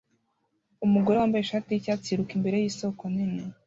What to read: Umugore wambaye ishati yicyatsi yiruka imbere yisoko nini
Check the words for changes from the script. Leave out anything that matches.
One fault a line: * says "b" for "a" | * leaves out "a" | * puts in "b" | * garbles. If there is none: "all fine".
all fine